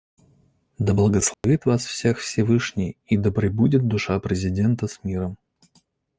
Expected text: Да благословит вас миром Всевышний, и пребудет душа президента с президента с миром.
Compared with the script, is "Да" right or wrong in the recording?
right